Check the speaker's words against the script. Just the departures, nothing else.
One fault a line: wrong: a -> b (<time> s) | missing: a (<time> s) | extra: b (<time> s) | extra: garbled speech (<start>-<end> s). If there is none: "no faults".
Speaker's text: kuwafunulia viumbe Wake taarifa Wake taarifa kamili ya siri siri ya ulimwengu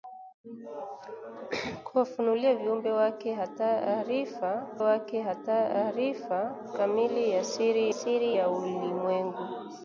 no faults